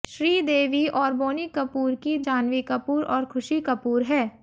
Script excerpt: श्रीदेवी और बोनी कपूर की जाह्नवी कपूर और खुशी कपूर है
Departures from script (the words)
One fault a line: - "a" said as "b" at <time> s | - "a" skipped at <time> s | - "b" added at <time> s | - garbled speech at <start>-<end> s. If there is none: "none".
none